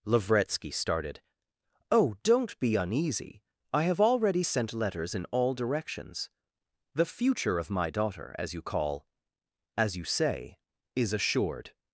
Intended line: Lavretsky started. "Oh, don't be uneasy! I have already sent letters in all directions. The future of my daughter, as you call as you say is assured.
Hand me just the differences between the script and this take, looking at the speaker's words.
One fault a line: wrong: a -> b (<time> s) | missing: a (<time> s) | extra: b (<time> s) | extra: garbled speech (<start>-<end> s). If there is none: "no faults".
no faults